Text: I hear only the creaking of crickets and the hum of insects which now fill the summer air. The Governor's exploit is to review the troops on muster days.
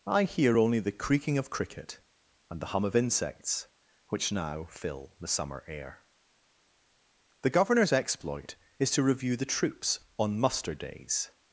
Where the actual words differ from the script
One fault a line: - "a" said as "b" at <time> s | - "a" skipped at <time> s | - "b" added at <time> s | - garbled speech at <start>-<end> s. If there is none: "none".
- "crickets" said as "cricket" at 1.5 s